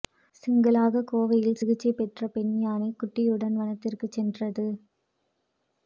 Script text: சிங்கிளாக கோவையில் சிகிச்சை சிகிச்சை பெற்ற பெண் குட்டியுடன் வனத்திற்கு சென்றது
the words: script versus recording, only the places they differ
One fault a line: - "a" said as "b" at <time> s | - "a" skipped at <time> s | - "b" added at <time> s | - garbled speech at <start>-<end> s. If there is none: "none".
- "சிகிச்சை" skipped at 1.9 s
- "யானை" added at 2.6 s